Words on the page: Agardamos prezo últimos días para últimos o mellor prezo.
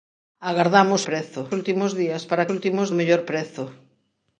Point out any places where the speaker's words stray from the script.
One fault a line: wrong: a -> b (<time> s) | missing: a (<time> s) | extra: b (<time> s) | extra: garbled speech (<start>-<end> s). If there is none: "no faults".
no faults